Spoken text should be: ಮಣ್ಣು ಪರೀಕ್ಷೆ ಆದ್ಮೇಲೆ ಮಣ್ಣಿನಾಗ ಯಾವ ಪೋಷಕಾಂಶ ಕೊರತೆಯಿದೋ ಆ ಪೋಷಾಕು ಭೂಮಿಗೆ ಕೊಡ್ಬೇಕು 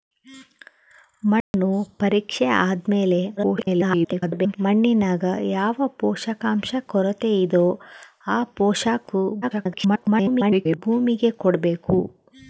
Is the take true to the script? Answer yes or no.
no